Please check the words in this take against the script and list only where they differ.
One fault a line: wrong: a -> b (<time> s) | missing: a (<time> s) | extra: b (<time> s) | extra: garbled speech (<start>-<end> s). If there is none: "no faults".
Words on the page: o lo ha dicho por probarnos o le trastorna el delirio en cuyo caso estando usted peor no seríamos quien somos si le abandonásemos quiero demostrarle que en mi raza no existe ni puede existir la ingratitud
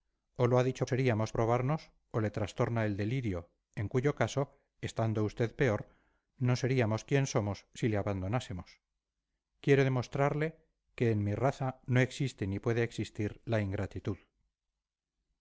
wrong: por -> seríamos (0.8 s)